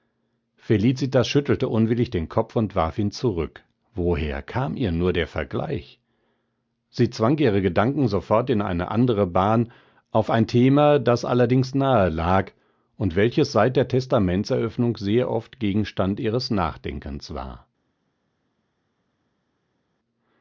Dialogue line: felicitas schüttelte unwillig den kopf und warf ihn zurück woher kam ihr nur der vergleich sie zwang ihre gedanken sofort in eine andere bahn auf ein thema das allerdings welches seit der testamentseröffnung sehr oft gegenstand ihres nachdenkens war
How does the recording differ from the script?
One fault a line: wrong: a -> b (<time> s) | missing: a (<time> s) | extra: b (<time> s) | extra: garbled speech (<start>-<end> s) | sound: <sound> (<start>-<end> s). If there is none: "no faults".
extra: nahe lag und (11.8 s)